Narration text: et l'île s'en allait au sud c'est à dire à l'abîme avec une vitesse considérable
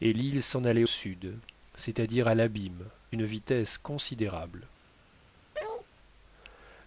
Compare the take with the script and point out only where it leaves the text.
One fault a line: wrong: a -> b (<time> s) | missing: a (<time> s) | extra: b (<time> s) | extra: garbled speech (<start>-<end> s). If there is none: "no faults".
missing: au (0.8 s)
missing: avec (2.9 s)